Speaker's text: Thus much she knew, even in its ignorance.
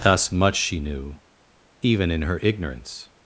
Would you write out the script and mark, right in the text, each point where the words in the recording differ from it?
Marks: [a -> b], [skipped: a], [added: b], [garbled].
Thus much she knew, even in [its -> her] ignorance.